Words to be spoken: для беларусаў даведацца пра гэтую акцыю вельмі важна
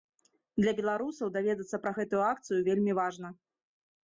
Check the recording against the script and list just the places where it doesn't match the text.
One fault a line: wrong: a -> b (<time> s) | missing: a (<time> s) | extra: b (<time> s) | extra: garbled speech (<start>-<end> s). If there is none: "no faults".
no faults